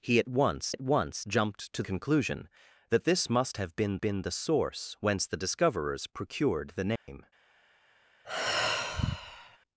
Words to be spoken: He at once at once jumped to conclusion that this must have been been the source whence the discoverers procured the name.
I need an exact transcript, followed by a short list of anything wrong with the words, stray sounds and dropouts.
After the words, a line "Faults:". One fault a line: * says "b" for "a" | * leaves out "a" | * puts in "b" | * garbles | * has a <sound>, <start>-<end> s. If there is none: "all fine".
He at once at once jumped to conclusion that this must have been been the source whence the discoverers procured the name.
Faults:
* has a dropout, 7.0-7.1 s
* has a sigh, 8.2-9.6 s